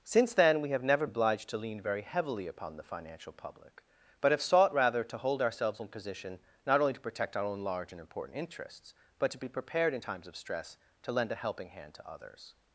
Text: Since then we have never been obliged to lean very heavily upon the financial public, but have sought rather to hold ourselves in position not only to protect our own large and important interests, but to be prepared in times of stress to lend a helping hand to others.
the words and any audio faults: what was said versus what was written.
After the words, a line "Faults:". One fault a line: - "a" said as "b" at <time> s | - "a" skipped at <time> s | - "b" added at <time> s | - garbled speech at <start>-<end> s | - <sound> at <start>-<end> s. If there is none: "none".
Since then we have never obliged to lean very heavily upon the financial public, but have sought rather to hold ourselves in position not only to protect our own large and important interests, but to be prepared in times of stress to lend a helping hand to others.
Faults:
- "been" skipped at 1.1 s